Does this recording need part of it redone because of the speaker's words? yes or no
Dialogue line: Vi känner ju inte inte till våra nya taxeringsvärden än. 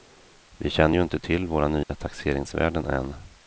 yes